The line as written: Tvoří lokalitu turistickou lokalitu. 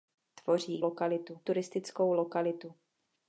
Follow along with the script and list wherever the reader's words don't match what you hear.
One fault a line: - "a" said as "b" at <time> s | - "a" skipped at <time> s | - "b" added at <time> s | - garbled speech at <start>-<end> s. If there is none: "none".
none